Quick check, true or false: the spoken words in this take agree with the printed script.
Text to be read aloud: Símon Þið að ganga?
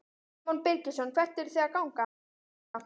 false